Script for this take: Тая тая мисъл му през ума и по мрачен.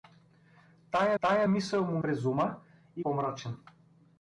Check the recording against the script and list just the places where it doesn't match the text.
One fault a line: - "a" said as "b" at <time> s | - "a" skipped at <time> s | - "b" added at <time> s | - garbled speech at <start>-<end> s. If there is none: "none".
none